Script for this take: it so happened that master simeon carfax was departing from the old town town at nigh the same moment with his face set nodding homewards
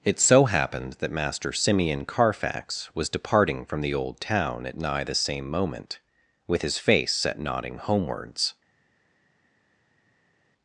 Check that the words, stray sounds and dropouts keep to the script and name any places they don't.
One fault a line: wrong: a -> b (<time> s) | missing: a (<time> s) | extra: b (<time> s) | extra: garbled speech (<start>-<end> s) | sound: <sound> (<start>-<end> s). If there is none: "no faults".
missing: town (4.7 s)